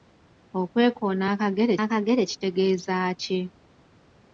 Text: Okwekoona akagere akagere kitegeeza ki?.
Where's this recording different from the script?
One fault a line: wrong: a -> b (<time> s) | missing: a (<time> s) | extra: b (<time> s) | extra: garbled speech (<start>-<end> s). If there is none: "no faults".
no faults